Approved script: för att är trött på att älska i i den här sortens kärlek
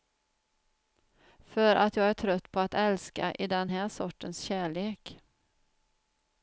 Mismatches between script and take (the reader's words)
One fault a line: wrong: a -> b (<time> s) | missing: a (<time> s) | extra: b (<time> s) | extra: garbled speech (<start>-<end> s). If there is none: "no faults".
extra: jag (1.9 s)
missing: i (3.5 s)